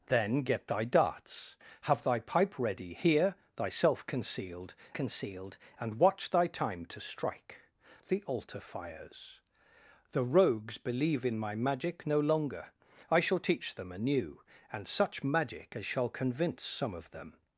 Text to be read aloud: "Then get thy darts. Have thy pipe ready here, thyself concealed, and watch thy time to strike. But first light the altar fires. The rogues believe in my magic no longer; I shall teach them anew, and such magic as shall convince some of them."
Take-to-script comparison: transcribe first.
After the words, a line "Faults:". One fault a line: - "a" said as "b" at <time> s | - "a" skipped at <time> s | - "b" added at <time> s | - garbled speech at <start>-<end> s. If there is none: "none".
"Then get thy darts. Have thy pipe ready here, thyself concealed concealed, and watch thy time to strike. The altar fires. The rogues believe in my magic no longer; I shall teach them anew, and such magic as shall convince some of them."
Faults:
- "concealed" added at 4.9 s
- "But first light" skipped at 7.6 s